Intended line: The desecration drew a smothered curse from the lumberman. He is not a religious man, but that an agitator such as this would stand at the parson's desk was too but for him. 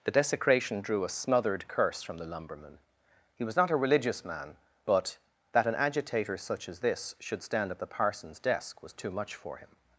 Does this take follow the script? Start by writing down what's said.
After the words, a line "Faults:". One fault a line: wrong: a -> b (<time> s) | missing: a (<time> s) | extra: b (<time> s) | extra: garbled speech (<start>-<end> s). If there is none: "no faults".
The desecration drew a smothered curse from the lumberman. He was not a religious man, but that an agitator such as this should stand at the parson's desk was too much for him.
Faults:
wrong: is -> was (3.4 s)
wrong: would -> should (7.2 s)
wrong: but -> much (9.1 s)